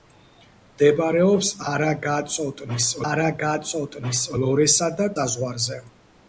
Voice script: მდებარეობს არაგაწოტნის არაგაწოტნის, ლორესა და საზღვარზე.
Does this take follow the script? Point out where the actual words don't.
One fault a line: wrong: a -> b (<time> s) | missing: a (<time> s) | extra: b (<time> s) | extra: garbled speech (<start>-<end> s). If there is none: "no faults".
no faults